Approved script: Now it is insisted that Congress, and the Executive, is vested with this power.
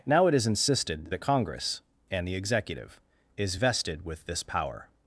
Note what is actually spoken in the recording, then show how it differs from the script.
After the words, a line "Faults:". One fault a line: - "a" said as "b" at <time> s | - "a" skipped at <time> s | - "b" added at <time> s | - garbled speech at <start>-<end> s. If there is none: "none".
Now it is insisted that Congress, and the Executive, is vested with this power.
Faults:
none